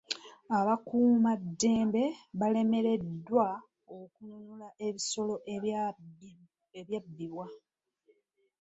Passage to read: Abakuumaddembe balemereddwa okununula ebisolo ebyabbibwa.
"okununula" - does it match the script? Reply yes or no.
yes